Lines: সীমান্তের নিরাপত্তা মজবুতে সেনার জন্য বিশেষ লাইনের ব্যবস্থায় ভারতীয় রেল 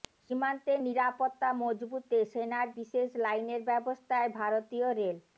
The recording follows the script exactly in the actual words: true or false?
false